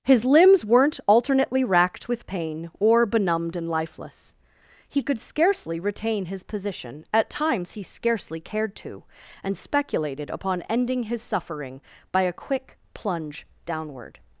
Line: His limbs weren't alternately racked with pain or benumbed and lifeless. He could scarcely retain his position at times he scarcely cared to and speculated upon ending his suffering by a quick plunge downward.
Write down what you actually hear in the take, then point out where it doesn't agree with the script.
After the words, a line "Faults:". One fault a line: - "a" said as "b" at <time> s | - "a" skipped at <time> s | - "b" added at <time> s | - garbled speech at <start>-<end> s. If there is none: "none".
His limbs weren't alternately racked with pain or benumbed and lifeless. He could scarcely retain his position at times he scarcely cared to and speculated upon ending his suffering by a quick plunge downward.
Faults:
none